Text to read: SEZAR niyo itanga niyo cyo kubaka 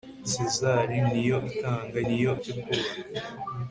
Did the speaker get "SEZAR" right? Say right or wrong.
right